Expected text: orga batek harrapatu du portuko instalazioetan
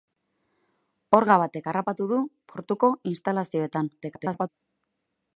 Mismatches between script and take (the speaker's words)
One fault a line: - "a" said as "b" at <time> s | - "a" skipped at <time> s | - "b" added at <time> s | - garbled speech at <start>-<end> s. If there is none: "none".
- garbled speech at 4.0-4.5 s